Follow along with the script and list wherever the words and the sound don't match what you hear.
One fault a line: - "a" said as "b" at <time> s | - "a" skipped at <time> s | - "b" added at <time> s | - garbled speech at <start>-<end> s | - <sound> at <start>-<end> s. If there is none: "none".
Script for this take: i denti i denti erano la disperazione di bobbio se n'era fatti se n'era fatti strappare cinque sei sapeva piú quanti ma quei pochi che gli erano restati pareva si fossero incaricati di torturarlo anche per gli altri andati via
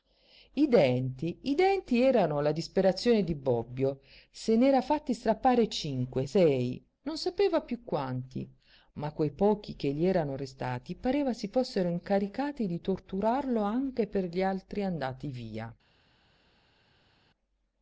- "se n'era fatti" skipped at 5.1 s
- "non" added at 7.0 s